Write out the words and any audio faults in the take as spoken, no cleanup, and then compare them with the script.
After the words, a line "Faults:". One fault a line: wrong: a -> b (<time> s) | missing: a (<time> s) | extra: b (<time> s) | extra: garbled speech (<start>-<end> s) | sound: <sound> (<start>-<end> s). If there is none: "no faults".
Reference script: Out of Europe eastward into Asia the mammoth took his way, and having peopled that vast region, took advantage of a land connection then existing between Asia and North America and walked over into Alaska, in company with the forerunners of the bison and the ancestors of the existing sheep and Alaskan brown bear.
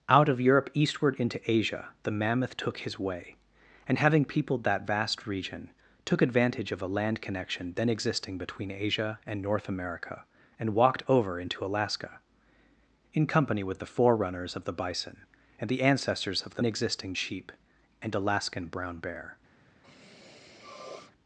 Out of Europe eastward into Asia the mammoth took his way, and having peopled that vast region, took advantage of a land connection then existing between Asia and North America and walked over into Alaska, in company with the forerunners of the bison and the ancestors of the existing sheep and Alaskan brown bear.
Faults:
sound: sniff (19.8-21.1 s)